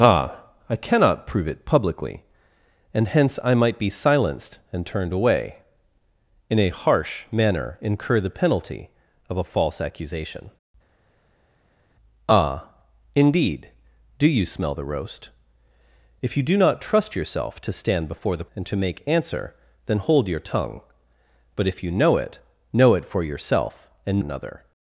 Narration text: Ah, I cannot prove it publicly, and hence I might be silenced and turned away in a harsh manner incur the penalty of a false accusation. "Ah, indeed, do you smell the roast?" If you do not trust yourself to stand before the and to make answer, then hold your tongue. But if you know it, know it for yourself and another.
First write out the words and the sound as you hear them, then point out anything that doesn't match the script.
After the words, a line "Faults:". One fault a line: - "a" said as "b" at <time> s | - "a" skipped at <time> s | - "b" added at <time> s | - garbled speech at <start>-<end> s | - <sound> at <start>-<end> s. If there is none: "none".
Ah, I cannot prove it publicly, and hence I might be silenced and turned away in a harsh manner incur the penalty of a false accusation. "Ah, indeed, do you smell the roast?" If you do not trust yourself to stand before the and to make answer, then hold your tongue. But if you know it, know it for yourself and another.
Faults:
none